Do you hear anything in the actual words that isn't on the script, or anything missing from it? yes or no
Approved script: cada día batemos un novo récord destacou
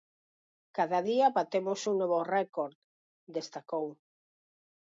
no